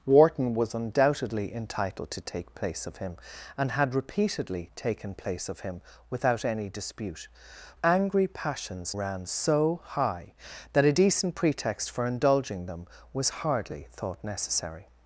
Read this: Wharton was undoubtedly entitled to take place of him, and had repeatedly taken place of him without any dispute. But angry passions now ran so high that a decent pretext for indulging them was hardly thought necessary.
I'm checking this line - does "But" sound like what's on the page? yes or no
no